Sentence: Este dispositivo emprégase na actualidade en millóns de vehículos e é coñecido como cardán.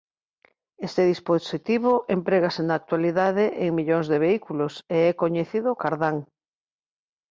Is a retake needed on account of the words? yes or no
yes